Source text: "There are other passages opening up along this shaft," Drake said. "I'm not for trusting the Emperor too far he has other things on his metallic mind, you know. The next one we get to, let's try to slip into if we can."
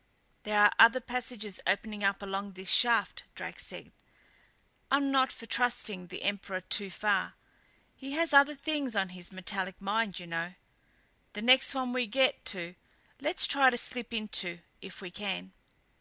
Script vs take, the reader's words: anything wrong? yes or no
no